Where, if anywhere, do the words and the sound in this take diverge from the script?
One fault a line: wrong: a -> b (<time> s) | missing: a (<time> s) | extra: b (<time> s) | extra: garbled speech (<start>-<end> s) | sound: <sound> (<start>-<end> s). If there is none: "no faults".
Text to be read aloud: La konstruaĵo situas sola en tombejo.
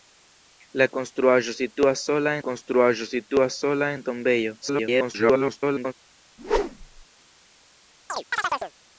extra: konstruaĵo situas sola (2.5 s)
extra: garbled speech (4.6-5.9 s)
sound: whoosh (6.4-7.1 s)
sound: chirp (8.1-8.7 s)